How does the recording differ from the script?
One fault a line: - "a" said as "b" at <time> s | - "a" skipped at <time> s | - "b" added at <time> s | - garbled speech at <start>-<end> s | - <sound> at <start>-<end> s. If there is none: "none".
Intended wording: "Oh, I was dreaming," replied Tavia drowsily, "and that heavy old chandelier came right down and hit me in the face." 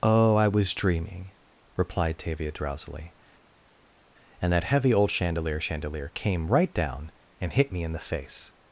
- "chandelier" added at 5.6 s